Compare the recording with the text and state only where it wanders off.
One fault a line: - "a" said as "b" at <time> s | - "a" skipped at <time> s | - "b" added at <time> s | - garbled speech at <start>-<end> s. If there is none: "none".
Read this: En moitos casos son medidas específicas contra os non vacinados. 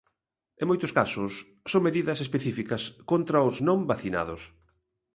none